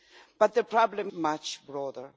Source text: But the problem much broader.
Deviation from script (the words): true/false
false